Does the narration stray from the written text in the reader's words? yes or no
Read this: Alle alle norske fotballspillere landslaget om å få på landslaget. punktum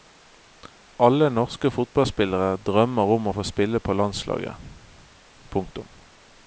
yes